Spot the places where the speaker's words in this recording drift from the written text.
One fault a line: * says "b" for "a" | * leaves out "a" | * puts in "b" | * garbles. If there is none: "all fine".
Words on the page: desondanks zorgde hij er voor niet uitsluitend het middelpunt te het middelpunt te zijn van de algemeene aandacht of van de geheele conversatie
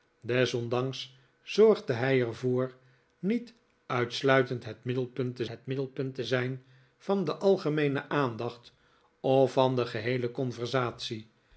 all fine